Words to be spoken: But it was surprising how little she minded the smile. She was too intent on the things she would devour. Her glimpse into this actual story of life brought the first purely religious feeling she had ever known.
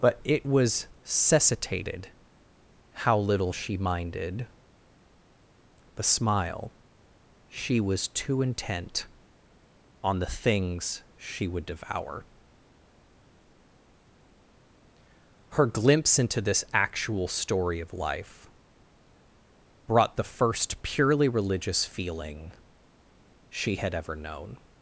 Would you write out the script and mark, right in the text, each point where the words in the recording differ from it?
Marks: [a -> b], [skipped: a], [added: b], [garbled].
But it was [surprising -> cessitated] how little she minded the smile. She was too intent on the things she would devour. Her glimpse into this actual story of life brought the first purely religious feeling she had ever known.